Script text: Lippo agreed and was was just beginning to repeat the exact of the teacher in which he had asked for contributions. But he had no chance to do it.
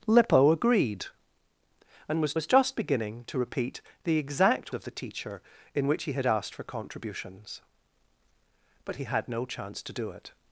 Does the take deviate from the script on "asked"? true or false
false